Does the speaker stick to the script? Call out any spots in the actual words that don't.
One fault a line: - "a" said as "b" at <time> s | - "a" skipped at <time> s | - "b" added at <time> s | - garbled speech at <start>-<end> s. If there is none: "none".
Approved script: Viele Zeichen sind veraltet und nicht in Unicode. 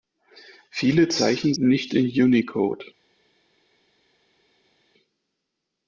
- "sind veraltet und" skipped at 1.5 s